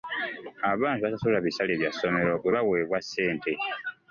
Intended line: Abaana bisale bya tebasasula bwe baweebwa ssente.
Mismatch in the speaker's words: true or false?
true